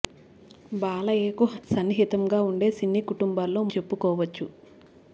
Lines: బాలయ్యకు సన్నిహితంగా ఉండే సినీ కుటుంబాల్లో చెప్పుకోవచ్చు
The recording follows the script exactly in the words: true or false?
true